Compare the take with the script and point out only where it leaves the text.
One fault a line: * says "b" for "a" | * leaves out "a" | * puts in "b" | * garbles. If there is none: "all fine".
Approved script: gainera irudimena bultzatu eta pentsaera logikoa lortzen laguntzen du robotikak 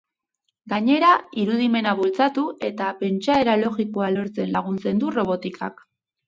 all fine